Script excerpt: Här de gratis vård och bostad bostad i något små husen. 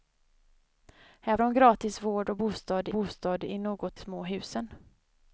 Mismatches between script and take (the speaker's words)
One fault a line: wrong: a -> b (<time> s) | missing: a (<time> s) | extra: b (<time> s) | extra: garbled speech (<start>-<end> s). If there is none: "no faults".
no faults